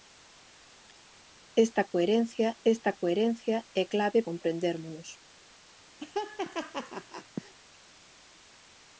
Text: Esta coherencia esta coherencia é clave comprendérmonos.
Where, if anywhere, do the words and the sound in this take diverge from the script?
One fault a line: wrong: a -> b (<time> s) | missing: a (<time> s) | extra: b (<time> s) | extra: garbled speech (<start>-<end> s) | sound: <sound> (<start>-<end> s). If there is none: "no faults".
sound: laugh (6.0-7.5 s)